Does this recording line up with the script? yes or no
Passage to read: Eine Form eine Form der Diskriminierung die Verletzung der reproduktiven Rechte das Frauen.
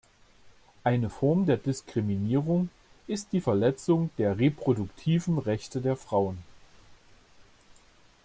no